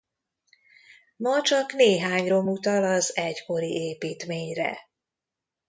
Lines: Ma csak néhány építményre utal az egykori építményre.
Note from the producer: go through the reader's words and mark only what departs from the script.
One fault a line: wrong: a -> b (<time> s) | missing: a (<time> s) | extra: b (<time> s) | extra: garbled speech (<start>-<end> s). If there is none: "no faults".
wrong: építményre -> rom (2.3 s)